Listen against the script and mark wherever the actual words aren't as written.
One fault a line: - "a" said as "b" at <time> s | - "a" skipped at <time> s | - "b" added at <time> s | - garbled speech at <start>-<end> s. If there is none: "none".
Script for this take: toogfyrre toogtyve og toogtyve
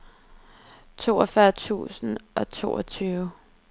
- "toogtyve" said as "tusind" at 1.5 s